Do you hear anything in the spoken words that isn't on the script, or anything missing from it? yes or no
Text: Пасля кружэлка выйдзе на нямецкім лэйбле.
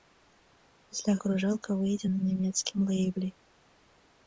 no